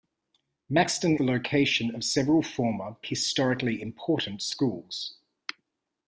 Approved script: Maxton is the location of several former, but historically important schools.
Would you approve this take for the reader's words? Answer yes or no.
no